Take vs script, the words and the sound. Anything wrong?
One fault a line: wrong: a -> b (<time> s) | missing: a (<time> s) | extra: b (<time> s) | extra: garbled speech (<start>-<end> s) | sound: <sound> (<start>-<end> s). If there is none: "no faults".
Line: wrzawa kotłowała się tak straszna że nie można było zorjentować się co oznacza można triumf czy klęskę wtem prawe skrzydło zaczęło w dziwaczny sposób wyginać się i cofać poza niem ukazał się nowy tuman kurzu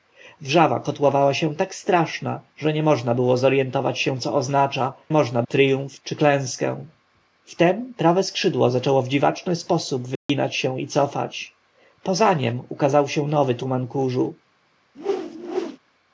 sound: dropout (10.2-10.3 s)
sound: whoosh (14.9-15.8 s)